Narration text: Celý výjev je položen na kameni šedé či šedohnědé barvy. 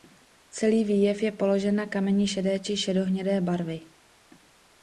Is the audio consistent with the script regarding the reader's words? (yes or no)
yes